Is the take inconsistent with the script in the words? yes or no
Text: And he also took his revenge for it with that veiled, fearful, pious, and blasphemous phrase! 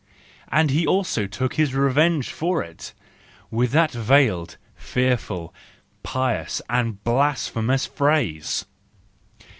no